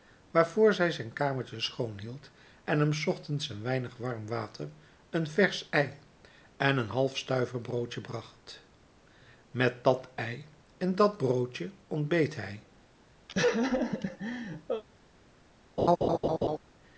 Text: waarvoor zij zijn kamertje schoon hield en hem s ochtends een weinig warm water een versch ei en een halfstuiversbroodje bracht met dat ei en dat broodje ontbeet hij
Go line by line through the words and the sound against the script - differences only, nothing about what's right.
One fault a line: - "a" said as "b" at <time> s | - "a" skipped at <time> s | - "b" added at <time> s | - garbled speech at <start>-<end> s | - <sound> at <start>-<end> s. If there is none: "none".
- laugh at 13.3-14.8 s
- laugh at 15.8-16.6 s